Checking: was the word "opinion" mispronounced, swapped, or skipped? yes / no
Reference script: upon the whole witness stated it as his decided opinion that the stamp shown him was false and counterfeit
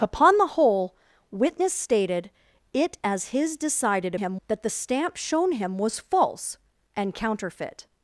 yes